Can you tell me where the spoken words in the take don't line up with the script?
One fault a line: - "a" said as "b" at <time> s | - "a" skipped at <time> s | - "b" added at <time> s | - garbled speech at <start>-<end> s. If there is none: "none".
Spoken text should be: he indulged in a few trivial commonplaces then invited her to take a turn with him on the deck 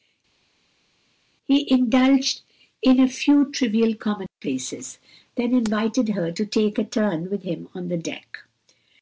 none